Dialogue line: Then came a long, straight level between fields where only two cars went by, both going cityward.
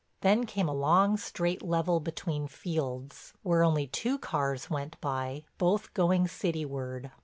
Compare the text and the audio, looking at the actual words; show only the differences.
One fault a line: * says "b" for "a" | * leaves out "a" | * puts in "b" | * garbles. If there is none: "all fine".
all fine